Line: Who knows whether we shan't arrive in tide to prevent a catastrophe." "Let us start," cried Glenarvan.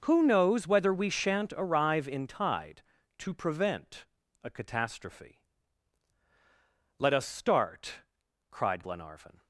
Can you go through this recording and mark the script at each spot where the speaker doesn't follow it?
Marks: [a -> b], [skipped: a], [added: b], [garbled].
Who knows whether we shan't arrive in tide to prevent a catastrophe." "Let us start," cried Glenarvan.